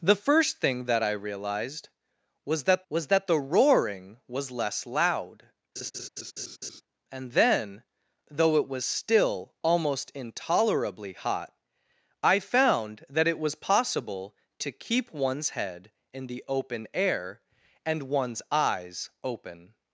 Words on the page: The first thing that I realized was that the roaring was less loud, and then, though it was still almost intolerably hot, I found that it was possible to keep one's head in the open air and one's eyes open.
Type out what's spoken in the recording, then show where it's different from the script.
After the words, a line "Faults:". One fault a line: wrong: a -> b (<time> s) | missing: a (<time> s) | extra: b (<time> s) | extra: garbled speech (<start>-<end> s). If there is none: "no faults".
The first thing that I realized was that was that the roaring was less loud, and then, though it was still almost intolerably hot, I found that it was possible to keep one's head in the open air and one's eyes open.
Faults:
extra: was that (2.9 s)